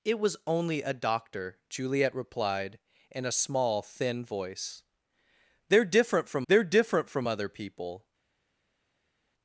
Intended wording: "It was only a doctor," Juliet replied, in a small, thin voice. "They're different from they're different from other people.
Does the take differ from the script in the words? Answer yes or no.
no